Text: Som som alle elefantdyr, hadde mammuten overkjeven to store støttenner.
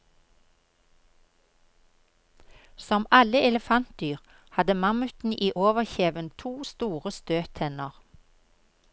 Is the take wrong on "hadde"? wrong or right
right